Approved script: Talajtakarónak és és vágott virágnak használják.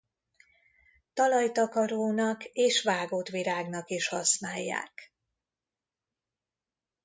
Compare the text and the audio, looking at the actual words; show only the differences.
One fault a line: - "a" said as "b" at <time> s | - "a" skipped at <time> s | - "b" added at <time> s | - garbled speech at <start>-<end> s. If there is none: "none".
- "és" skipped at 2.8 s
- "is" added at 3.9 s